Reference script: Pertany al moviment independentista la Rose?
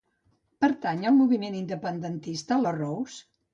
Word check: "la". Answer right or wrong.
right